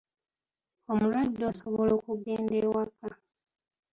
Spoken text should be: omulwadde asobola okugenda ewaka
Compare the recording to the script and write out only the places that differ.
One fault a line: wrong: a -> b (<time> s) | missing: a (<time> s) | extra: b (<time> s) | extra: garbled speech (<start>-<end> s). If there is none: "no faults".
no faults